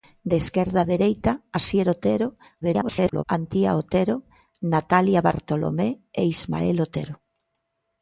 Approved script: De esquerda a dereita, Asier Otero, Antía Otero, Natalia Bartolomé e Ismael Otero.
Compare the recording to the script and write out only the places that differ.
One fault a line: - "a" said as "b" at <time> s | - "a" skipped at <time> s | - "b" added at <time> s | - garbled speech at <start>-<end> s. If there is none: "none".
- garbled speech at 2.6-3.2 s